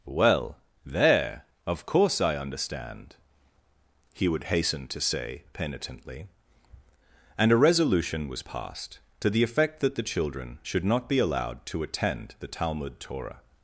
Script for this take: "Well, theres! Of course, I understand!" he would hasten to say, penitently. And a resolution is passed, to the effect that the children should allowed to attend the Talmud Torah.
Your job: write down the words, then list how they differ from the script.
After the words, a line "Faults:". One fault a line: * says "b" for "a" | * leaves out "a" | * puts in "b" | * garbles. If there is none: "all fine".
"Well, there! Of course, I understand!" he would hasten to say, penitently. And a resolution was passed, to the effect that the children should not be allowed to attend the Talmud Torah.
Faults:
* says "there" for "theres"
* says "was" for "is"
* puts in "not be"